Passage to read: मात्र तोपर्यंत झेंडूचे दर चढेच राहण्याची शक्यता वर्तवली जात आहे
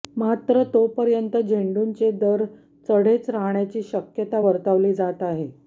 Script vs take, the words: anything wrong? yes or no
no